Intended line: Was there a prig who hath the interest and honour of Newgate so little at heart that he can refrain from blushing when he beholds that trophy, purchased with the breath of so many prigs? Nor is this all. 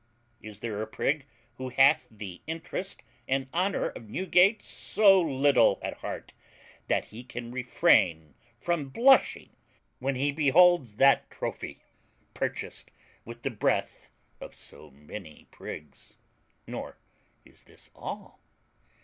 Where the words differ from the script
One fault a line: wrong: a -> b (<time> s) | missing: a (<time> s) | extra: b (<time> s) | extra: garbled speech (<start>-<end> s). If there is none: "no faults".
wrong: Was -> Is (0.4 s)